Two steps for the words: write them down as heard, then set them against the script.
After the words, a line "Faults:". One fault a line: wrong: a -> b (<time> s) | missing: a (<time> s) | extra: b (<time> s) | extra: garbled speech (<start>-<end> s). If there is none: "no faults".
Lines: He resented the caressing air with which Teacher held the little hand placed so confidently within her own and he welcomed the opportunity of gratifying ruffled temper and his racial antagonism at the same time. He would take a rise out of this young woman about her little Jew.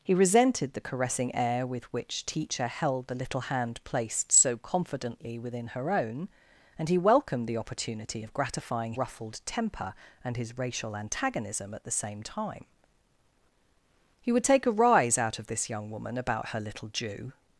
He resented the caressing air with which Teacher held the little hand placed so confidently within her own and he welcomed the opportunity of gratifying ruffled temper and his racial antagonism at the same time. He would take a rise out of this young woman about her little Jew.
Faults:
no faults